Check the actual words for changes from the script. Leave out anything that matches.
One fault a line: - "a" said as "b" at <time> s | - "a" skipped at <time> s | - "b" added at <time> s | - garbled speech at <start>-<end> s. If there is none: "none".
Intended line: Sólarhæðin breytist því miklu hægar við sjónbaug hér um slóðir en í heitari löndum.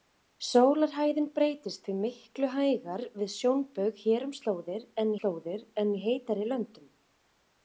- "slóðir en" added at 5.2 s